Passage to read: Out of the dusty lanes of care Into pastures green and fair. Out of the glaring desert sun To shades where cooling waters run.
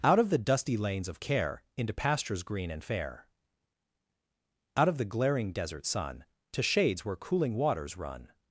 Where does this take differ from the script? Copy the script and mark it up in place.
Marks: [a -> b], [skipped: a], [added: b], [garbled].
Out of the dusty lanes of care Into pastures green and fair. Out of the glaring desert sun To shades where cooling waters run.